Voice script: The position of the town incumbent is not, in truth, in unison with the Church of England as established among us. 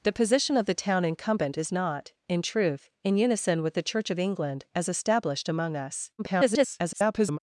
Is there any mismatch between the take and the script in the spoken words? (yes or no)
yes